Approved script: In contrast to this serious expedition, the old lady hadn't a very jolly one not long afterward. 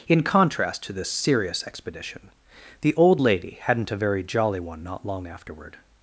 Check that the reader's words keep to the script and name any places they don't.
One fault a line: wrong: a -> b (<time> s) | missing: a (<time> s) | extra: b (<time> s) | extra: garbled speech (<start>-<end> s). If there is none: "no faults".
no faults